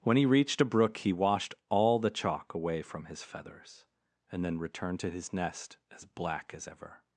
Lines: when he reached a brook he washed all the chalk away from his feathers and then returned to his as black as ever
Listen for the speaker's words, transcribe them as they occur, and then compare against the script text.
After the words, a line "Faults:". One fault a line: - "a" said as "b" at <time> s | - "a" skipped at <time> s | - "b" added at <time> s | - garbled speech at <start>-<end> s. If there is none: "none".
when he reached a brook he washed all the chalk away from his feathers and then returned to his nest as black as ever
Faults:
- "nest" added at 5.3 s